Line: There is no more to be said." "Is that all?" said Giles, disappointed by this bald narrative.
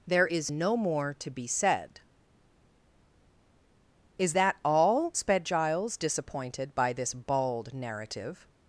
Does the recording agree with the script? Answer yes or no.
no